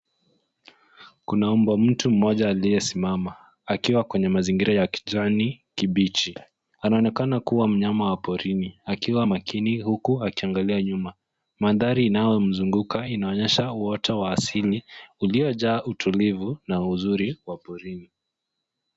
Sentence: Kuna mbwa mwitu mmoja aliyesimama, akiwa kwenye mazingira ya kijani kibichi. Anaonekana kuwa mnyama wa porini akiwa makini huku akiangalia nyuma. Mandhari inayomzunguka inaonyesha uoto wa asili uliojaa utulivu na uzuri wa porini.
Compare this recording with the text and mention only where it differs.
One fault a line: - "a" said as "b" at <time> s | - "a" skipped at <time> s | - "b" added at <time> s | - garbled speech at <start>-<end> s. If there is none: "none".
none